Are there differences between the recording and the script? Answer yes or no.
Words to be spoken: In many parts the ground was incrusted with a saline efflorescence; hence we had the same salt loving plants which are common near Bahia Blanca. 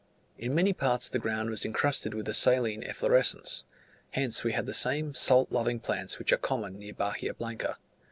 no